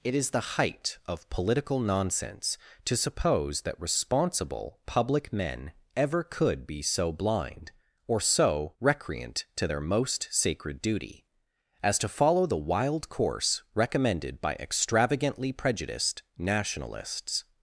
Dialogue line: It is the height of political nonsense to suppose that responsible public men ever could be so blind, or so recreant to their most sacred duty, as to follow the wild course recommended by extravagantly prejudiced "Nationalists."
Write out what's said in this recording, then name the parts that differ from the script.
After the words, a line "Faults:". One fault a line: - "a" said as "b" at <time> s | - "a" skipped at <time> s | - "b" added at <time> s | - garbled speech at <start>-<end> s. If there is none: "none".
It is the height of political nonsense to suppose that responsible public men ever could be so blind, or so recreant to their most sacred duty, as to follow the wild course recommended by extravagantly prejudiced "Nationalists."
Faults:
none